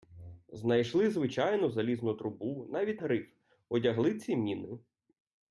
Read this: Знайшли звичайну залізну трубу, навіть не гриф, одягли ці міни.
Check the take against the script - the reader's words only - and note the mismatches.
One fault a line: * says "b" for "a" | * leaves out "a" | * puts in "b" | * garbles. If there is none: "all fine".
* leaves out "не"